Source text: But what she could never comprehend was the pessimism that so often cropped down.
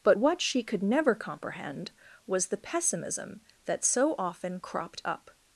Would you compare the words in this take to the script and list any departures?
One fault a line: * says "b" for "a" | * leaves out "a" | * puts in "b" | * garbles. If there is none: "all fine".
* says "up" for "down"